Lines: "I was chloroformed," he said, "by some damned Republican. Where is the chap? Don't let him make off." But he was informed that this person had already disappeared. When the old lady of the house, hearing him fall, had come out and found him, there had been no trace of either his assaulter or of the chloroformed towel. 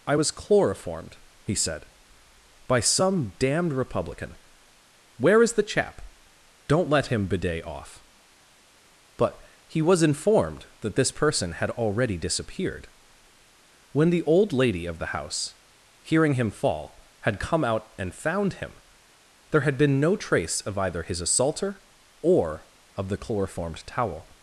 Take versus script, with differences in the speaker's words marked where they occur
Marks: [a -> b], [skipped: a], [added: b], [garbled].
"I was chloroformed," he said, "by some damned Republican. Where is the chap? Don't let him [make -> bidet] off." But he was informed that this person had already disappeared. When the old lady of the house, hearing him fall, had come out and found him, there had been no trace of either his assaulter or of the chloroformed towel.